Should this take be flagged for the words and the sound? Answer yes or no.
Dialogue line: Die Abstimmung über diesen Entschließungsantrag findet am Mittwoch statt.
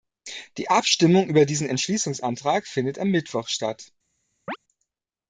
yes